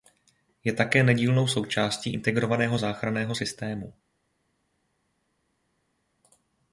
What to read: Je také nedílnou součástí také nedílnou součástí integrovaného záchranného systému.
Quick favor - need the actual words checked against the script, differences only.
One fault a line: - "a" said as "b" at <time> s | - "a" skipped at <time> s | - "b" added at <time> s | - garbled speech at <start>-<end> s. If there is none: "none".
- "také nedílnou součástí" skipped at 2.1 s